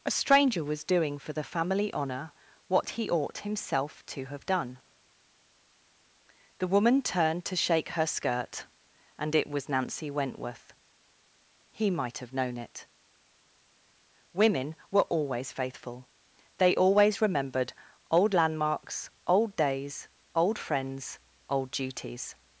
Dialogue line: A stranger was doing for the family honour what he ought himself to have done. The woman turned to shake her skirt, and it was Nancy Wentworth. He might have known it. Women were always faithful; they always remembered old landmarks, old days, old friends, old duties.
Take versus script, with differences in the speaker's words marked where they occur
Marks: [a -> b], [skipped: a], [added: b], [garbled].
A stranger was doing for the family honour what he ought himself to have done. The woman turned to shake her skirt, and it was Nancy Wentworth. He might have known it. Women were always faithful; they always remembered old landmarks, old days, old friends, old duties.